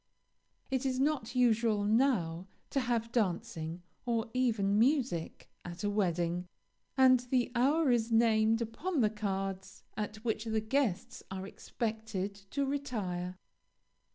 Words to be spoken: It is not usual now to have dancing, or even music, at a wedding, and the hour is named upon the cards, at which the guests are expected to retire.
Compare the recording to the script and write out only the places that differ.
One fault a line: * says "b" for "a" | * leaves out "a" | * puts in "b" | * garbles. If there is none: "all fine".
all fine